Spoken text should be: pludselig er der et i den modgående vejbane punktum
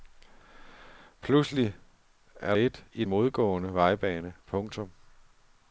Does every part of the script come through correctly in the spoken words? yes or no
no